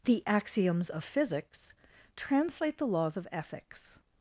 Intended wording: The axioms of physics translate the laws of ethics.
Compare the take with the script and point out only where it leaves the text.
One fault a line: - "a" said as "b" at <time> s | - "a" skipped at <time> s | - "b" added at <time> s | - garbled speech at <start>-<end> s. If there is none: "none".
none